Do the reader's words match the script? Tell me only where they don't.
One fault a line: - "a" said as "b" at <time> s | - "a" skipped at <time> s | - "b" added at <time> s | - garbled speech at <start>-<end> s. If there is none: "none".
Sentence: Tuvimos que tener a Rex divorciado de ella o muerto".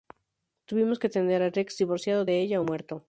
none